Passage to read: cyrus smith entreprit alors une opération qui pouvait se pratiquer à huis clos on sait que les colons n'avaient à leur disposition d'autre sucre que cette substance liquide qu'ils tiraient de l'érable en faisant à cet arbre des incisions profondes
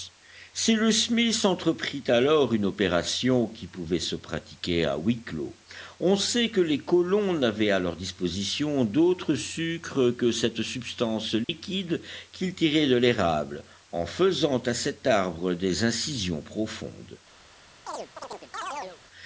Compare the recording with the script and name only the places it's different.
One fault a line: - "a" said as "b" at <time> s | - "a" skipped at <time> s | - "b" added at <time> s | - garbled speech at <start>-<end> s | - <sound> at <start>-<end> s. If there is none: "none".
- dropout at 11.4-11.5 s
- chirp at 17.9-19.0 s